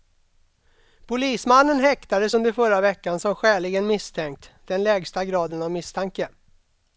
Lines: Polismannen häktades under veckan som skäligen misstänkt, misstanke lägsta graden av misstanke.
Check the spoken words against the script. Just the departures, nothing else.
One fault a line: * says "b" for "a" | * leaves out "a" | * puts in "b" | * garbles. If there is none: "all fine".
* puts in "förra"
* says "den" for "misstanke"